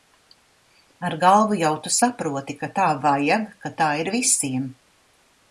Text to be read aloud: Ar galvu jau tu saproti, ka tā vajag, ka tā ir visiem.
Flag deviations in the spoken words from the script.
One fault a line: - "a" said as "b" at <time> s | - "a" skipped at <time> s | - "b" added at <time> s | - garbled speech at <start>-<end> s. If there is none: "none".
none